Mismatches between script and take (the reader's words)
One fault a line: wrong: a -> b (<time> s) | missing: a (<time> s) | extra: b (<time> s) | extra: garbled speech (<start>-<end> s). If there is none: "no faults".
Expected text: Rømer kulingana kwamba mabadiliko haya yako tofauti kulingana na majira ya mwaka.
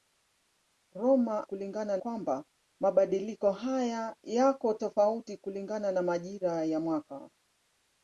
no faults